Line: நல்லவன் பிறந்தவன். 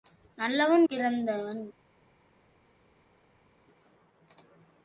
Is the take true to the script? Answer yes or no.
yes